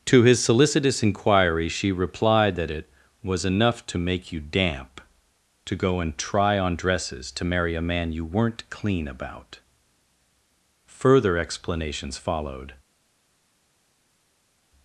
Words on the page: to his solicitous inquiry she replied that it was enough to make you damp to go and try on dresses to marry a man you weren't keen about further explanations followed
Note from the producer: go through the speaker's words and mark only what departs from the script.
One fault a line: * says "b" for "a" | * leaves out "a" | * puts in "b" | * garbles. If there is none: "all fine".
* says "clean" for "keen"